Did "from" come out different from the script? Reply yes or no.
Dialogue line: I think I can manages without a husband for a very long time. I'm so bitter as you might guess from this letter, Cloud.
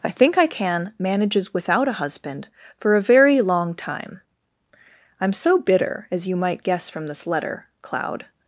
no